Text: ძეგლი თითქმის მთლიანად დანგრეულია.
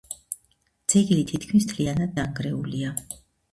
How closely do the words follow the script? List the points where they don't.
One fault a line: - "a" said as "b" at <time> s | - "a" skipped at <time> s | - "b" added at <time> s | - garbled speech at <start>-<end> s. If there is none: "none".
none